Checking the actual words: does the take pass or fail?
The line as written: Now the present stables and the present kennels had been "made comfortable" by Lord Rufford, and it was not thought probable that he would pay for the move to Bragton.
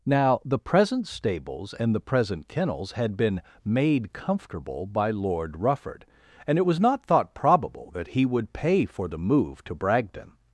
pass